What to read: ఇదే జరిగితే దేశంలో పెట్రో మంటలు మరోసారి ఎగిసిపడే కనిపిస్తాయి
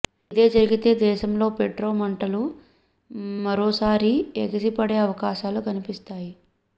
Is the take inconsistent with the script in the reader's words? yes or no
yes